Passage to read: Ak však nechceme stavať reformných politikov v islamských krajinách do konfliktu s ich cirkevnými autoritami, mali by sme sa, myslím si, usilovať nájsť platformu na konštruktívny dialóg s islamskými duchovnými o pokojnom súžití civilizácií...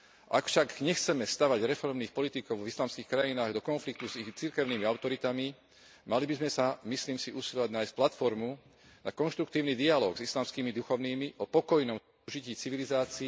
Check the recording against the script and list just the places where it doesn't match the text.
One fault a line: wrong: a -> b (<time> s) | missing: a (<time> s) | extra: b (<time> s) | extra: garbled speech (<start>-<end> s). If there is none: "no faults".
no faults